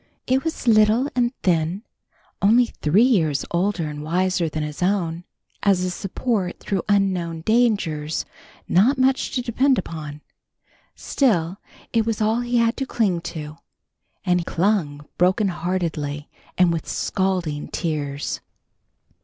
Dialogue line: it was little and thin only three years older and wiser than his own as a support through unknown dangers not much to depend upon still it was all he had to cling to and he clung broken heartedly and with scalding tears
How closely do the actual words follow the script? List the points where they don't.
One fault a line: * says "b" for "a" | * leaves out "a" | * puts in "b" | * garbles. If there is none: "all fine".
* leaves out "he"